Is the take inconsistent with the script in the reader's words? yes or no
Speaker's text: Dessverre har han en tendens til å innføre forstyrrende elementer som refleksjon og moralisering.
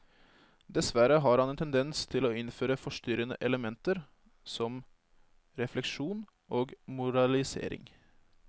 no